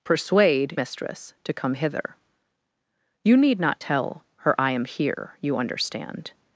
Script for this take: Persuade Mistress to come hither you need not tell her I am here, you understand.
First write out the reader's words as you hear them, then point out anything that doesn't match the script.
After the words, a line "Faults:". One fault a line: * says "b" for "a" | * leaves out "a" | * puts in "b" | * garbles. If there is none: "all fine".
Persuade Mistress to come hither you need not tell her I am here, you understand.
Faults:
all fine